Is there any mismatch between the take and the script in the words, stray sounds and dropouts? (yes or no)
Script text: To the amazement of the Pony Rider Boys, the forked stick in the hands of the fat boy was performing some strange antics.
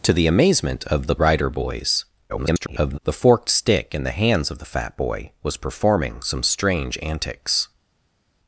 yes